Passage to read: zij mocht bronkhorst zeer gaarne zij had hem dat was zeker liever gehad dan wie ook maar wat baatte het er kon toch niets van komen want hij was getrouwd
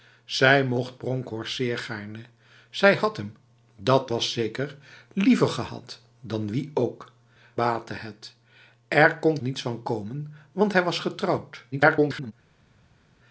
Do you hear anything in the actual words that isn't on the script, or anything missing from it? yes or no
yes